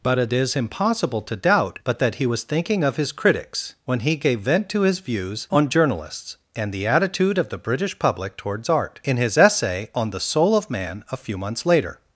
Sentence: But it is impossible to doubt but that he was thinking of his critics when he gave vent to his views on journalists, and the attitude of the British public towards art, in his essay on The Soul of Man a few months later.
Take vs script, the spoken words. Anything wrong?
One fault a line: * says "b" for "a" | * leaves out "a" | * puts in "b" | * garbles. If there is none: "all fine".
all fine